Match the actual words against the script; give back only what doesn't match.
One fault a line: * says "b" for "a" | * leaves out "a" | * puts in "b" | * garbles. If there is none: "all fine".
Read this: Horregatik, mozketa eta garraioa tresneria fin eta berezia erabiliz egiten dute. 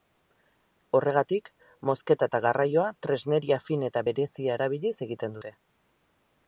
all fine